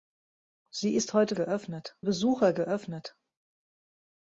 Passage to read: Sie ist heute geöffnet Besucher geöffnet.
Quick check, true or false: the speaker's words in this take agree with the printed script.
true